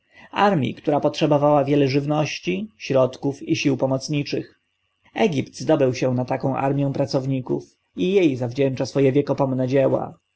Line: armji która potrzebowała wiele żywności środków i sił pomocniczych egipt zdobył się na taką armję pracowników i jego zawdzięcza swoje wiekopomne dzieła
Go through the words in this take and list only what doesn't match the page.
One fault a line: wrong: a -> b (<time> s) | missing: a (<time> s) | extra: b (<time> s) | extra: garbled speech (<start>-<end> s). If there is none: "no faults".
wrong: jego -> jej (8.1 s)